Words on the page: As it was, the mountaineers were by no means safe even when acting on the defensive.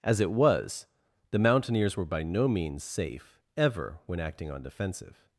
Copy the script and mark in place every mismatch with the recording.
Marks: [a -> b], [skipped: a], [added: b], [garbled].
As it was, the mountaineers were by no means safe [even -> ever] when acting on [skipped: the] defensive.